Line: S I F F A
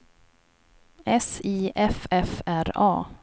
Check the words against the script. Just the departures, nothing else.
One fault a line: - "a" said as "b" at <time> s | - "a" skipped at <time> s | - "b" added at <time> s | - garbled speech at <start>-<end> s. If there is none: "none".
- "R" added at 2.5 s